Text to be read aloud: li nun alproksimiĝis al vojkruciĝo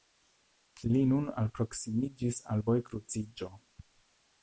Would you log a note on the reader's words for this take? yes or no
no